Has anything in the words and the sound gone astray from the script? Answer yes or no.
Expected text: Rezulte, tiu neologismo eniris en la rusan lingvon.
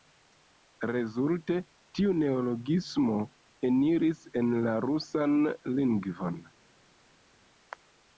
no